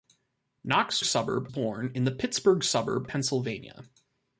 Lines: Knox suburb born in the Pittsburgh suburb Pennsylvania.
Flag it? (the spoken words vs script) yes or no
no